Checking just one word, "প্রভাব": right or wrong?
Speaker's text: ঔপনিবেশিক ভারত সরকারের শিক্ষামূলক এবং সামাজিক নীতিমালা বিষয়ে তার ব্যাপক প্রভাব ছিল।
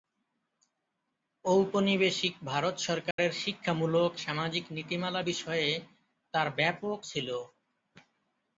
wrong